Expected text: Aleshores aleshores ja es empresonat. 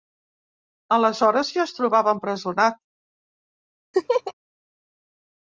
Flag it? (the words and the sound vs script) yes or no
yes